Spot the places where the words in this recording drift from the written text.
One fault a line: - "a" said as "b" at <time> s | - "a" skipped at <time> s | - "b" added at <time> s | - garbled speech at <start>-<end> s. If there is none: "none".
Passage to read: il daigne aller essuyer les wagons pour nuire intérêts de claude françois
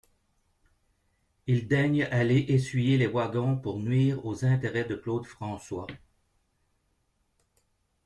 - "aux" added at 4.2 s